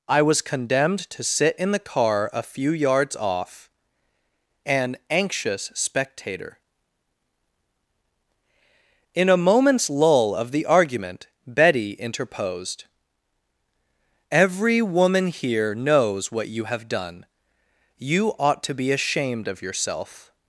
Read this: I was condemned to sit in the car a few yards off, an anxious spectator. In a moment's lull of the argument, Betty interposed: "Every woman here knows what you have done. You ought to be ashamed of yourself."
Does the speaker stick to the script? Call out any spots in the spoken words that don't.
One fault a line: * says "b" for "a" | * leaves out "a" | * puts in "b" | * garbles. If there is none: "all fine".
all fine